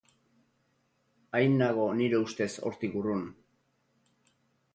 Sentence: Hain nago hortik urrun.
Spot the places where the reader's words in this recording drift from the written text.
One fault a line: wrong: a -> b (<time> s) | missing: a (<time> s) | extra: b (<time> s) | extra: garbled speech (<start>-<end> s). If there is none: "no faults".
extra: nire ustez (2.0 s)